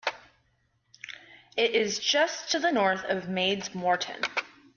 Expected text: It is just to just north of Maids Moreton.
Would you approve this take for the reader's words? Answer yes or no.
no